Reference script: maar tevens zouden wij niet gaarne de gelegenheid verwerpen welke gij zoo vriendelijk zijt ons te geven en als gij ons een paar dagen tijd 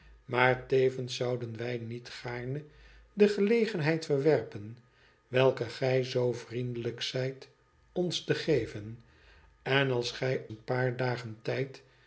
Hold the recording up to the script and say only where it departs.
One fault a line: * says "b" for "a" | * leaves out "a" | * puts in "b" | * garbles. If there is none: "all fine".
* leaves out "ons"